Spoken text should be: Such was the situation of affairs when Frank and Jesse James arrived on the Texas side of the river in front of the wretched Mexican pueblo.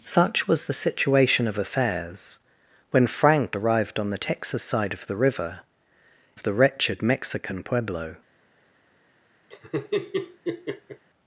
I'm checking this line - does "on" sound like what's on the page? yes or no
yes